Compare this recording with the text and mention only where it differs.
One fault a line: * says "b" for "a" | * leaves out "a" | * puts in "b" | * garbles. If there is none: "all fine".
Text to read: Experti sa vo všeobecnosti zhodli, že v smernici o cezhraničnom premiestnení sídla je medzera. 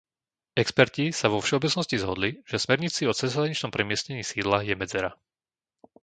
all fine